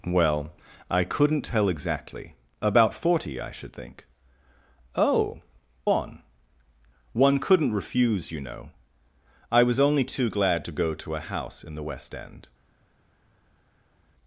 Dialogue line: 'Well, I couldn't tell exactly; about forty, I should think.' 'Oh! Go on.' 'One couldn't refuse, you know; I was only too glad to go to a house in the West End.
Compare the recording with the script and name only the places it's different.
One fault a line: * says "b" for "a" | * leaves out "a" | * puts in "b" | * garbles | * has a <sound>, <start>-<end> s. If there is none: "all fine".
* leaves out "Go"